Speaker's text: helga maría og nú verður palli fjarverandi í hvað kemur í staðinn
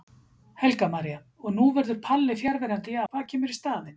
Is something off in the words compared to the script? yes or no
no